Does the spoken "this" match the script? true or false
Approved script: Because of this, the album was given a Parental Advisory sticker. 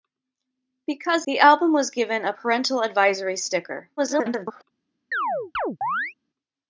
false